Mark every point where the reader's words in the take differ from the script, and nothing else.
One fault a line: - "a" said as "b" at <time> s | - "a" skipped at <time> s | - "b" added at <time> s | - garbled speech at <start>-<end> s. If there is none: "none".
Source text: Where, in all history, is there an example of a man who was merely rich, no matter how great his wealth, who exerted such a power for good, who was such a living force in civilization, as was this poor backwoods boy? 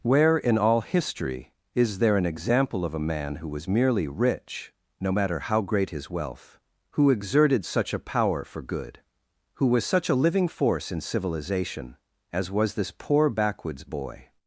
none